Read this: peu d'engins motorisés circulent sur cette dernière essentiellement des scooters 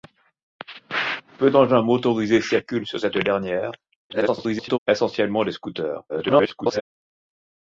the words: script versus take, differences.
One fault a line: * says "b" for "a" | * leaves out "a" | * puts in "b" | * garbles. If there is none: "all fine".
* garbles
* garbles